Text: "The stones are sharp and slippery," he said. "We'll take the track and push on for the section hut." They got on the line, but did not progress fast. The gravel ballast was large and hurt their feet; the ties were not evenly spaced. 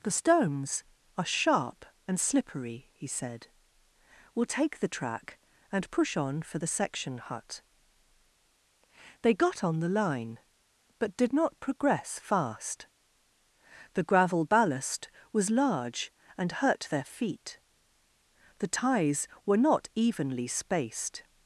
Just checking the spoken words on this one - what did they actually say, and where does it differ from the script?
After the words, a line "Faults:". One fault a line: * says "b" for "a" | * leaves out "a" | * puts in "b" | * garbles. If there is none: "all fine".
"The stones are sharp and slippery," he said. "We'll take the track and push on for the section hut." They got on the line, but did not progress fast. The gravel ballast was large and hurt their feet; the ties were not evenly spaced.
Faults:
all fine